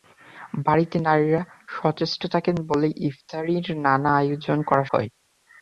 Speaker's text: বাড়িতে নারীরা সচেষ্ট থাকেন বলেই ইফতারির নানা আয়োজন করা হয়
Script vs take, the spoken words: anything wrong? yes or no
no